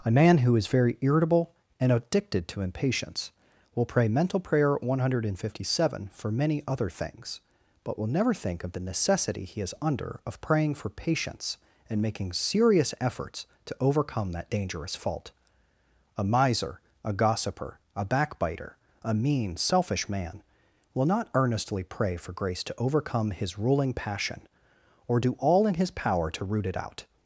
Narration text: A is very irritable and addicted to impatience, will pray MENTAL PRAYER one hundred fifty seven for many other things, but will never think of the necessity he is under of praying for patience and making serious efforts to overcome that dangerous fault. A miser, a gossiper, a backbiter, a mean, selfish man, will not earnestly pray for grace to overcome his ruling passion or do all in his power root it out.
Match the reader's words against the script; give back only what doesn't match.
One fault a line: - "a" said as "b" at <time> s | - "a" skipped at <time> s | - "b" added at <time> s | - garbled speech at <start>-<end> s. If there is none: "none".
- "man who" added at 0.1 s
- "to" added at 26.3 s